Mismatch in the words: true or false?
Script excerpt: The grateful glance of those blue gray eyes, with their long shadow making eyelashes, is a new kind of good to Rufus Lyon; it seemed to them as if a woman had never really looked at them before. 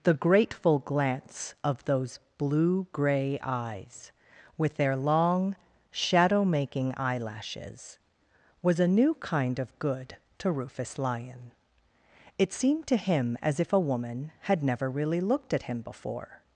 true